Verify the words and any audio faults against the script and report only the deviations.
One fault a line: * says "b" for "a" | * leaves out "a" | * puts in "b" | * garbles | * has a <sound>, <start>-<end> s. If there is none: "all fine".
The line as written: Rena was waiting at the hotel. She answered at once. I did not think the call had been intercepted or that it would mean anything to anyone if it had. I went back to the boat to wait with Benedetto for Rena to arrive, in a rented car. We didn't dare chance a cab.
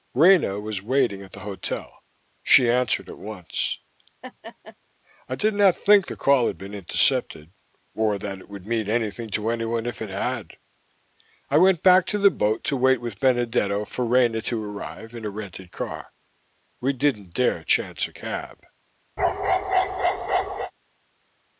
* has a laugh, 4.2-4.8 s
* has a bark, 19.2-20.7 s